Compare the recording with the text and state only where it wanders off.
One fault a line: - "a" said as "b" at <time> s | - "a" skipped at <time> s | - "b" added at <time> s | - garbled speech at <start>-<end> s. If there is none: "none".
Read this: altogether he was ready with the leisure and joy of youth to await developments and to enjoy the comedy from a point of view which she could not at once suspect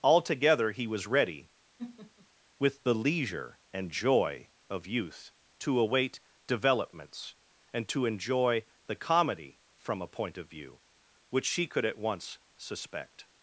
- "not" skipped at 11.8 s